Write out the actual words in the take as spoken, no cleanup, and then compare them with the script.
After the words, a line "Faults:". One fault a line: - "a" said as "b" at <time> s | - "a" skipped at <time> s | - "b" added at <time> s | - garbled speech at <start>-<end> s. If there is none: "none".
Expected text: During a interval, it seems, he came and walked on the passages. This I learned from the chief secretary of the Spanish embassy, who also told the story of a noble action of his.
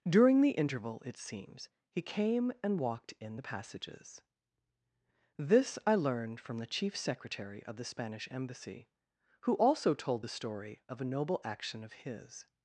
During the interval, it seems, he came and walked in the passages. This I learned from the chief secretary of the Spanish embassy, who also told the story of a noble action of his.
Faults:
- "a" said as "the" at 0.4 s
- "on" said as "in" at 3.2 s